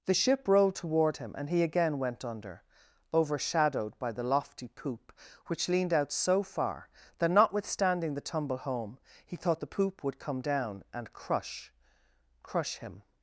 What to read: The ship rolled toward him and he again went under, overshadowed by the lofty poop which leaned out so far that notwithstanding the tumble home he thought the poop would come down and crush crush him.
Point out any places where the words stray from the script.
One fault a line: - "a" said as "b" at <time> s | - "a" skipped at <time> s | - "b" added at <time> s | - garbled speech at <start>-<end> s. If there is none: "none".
none